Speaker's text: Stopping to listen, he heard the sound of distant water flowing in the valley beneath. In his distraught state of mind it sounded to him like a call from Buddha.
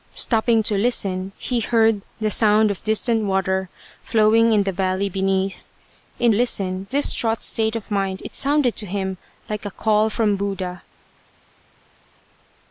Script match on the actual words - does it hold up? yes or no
no